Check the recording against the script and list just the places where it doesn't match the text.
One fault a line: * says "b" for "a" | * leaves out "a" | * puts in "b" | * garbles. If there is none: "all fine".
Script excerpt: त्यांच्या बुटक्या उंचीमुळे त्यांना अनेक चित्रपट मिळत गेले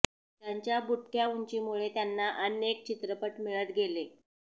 all fine